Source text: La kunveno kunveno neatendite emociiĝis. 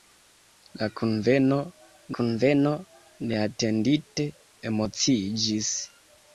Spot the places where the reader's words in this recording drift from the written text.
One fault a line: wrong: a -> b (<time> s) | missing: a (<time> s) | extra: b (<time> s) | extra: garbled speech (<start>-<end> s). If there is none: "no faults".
no faults